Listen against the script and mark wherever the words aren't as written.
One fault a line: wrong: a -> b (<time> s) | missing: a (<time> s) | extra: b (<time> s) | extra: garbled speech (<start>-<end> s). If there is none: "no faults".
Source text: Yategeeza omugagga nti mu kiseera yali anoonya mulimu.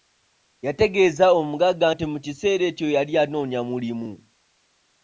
extra: ekyo (2.7 s)